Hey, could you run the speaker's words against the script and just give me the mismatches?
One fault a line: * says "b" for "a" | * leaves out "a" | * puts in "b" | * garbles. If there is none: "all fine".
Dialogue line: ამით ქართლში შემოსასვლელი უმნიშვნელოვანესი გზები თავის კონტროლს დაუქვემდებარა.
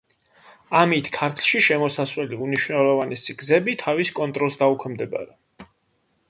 all fine